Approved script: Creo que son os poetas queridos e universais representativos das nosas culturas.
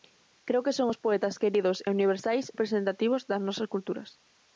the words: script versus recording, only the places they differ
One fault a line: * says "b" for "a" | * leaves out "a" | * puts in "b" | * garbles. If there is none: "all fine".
all fine